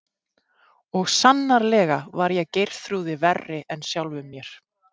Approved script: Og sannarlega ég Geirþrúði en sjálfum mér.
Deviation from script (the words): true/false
true